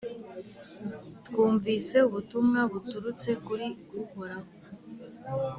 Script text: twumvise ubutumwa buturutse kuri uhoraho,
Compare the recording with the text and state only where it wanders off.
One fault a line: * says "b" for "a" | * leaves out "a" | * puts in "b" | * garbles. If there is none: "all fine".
all fine